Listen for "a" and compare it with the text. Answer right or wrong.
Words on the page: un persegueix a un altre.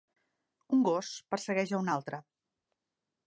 right